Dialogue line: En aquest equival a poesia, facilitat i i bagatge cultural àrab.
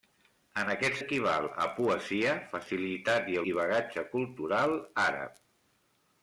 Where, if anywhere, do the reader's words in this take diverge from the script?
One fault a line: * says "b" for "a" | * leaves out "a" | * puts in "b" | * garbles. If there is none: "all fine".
all fine